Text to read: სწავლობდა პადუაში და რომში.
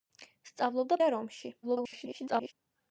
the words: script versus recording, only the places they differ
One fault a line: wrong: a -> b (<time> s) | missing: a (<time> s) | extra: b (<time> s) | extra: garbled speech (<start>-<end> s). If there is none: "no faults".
missing: პადუაში (1.0 s)
extra: garbled speech (1.6-2.5 s)